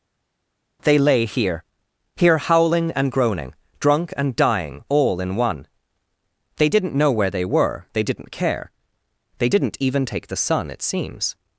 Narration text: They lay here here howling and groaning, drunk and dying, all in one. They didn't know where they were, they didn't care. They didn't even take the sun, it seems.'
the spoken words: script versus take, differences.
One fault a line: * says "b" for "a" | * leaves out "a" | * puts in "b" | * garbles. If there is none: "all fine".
all fine